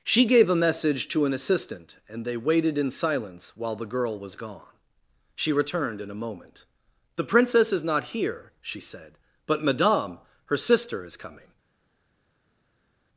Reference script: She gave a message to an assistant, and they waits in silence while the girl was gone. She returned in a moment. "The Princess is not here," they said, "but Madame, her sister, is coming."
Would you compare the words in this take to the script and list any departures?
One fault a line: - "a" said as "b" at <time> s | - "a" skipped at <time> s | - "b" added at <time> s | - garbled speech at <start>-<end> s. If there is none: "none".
- "waits" said as "waited" at 2.4 s
- "they" said as "she" at 8.6 s